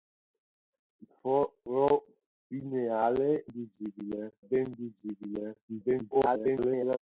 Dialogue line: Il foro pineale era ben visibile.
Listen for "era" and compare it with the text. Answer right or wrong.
wrong